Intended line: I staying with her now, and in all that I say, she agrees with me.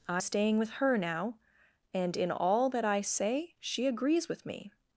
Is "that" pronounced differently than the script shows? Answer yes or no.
no